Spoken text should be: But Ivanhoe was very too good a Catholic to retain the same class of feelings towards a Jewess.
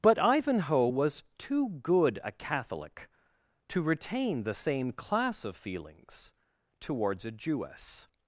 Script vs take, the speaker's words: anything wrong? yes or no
yes